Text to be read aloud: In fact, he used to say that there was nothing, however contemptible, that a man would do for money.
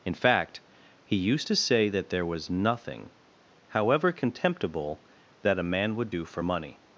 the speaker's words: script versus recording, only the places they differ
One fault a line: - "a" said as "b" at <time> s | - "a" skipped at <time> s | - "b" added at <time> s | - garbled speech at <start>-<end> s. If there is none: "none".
none